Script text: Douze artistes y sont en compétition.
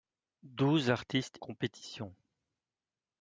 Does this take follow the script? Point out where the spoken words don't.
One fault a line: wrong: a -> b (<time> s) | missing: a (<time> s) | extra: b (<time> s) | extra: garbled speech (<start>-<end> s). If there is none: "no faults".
missing: y sont en (1.4 s)